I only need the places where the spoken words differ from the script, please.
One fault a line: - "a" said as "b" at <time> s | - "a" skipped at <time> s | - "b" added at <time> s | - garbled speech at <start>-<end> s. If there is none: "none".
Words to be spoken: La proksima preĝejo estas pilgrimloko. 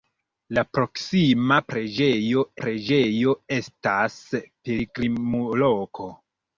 - "preĝejo" added at 2.6 s